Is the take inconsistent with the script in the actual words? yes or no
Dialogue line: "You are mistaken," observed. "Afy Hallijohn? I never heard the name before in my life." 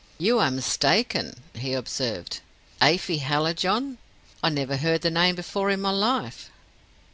yes